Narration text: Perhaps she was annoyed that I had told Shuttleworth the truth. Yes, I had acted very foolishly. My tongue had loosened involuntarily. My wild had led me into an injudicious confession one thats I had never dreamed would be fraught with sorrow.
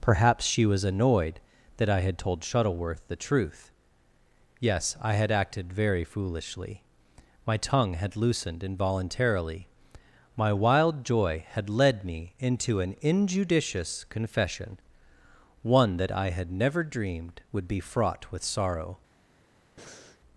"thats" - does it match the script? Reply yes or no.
no